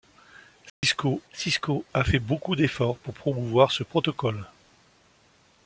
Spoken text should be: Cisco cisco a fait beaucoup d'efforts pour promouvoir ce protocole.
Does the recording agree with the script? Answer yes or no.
yes